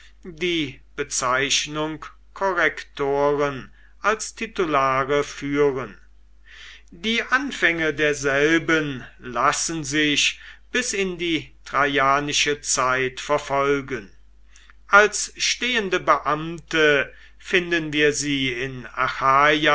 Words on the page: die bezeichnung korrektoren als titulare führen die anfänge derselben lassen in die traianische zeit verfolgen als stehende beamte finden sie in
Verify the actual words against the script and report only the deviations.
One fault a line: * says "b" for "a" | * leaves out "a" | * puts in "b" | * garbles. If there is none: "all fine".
* puts in "sich bis"
* puts in "wir"